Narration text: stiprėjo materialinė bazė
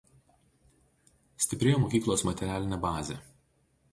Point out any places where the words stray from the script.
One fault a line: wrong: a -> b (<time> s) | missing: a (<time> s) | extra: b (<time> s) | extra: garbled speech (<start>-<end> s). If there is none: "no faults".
extra: mokyklos (1.8 s)